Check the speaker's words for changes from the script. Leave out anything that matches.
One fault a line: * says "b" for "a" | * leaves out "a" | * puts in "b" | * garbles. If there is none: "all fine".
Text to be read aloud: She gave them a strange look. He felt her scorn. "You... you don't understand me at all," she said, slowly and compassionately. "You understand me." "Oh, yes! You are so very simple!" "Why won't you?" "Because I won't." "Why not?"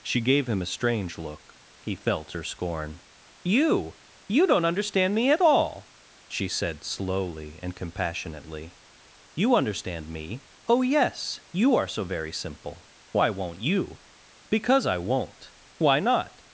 * says "him" for "them"